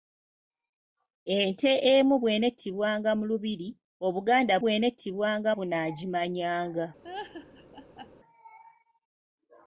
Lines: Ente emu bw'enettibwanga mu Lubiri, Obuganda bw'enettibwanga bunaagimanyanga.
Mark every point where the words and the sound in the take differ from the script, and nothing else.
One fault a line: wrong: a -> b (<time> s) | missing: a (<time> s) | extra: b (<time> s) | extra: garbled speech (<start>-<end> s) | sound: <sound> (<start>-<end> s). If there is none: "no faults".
sound: laugh (7.0-8.1 s)